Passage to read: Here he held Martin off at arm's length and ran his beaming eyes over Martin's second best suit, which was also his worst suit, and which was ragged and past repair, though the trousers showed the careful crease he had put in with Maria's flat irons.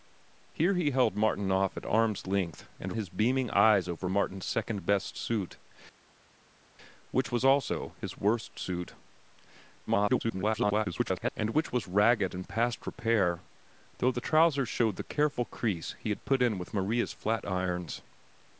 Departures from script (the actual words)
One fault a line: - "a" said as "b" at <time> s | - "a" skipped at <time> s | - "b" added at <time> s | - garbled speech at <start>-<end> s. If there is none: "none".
- "ran" skipped at 2.9 s
- garbled speech at 9.9-11.3 s